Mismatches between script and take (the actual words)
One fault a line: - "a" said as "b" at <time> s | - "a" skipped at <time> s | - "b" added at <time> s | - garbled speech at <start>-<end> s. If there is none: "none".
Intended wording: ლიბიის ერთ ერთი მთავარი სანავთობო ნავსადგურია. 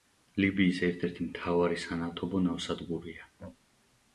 none